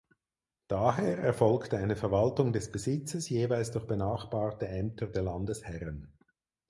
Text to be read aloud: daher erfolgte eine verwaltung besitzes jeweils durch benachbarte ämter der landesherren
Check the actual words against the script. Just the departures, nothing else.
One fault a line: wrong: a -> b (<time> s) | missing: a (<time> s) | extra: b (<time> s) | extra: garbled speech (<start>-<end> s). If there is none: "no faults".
extra: des (2.5 s)